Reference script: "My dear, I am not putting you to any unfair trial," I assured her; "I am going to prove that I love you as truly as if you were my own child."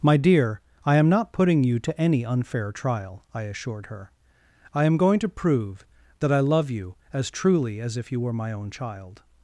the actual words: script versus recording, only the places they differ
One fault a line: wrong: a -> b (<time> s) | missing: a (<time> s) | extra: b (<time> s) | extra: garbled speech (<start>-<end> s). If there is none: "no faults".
no faults